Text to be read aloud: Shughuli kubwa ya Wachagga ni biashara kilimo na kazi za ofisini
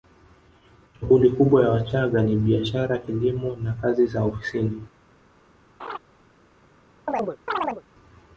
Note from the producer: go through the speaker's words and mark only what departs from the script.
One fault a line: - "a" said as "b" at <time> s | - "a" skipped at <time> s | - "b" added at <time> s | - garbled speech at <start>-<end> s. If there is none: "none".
none